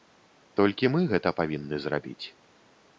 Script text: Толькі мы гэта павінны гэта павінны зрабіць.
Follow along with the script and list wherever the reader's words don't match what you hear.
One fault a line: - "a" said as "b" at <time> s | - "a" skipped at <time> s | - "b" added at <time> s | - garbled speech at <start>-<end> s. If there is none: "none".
- "гэта павінны" skipped at 1.8 s